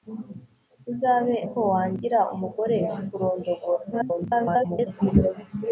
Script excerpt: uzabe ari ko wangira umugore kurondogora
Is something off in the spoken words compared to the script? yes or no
yes